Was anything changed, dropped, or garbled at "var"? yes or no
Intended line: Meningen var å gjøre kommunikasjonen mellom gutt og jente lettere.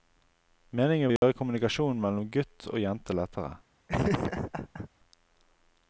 yes